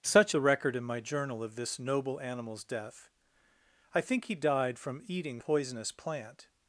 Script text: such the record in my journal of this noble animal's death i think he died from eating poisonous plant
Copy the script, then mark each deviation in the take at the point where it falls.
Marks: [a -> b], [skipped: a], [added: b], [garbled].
such the record in my journal of this noble animal's death i think he died from eating poisonous plant